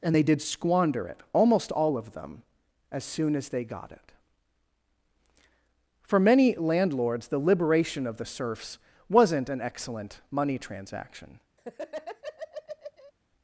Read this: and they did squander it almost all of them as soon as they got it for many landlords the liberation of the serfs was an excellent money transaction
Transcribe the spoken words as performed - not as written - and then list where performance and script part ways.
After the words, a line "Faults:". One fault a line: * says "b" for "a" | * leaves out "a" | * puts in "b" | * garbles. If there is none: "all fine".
and they did squander it almost all of them as soon as they got it for many landlords the liberation of the serfs wasn't an excellent money transaction
Faults:
* says "wasn't" for "was"